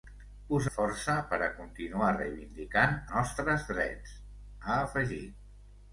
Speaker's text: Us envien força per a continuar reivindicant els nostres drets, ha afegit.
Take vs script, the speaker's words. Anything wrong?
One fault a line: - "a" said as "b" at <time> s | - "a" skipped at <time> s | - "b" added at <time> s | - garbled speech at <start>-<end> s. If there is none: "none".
- "envien" skipped at 0.7 s
- "els" skipped at 2.9 s